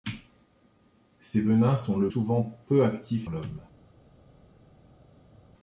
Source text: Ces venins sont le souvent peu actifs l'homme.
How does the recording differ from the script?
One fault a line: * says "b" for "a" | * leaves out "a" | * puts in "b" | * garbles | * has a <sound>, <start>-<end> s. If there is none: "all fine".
all fine